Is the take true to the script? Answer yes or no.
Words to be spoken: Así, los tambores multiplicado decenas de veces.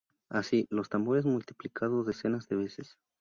yes